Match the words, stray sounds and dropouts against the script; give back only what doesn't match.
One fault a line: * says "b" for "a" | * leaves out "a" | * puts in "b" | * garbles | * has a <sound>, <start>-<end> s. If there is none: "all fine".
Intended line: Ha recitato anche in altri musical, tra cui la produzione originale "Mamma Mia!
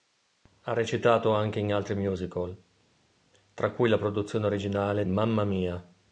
all fine